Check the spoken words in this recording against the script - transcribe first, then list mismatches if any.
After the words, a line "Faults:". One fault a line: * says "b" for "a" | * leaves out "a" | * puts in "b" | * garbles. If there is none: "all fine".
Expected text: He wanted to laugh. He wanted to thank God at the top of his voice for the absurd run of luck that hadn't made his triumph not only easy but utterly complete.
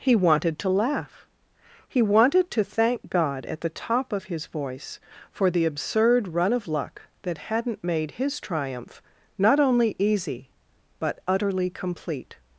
He wanted to laugh. He wanted to thank God at the top of his voice for the absurd run of luck that hadn't made his triumph not only easy but utterly complete.
Faults:
all fine